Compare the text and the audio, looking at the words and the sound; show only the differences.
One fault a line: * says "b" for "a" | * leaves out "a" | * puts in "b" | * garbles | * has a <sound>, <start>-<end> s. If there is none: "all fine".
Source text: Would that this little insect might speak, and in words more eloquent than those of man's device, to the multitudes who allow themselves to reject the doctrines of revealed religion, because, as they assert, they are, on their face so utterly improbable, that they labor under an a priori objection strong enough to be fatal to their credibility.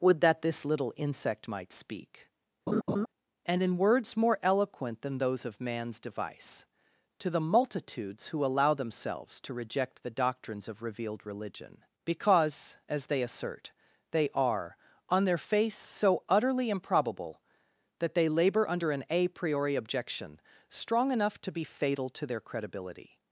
* has a laugh, 2.7-3.1 s